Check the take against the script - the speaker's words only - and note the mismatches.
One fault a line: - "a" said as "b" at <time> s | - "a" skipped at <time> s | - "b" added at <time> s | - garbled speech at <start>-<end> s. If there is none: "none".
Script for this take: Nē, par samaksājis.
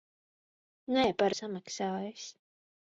none